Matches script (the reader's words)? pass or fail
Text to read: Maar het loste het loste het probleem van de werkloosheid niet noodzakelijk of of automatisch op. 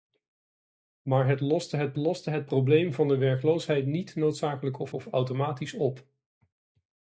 pass